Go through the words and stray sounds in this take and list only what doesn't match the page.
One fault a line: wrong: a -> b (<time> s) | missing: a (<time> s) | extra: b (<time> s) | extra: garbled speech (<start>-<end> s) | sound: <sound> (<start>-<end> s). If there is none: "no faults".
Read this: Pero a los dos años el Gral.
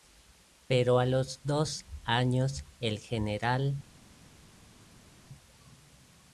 no faults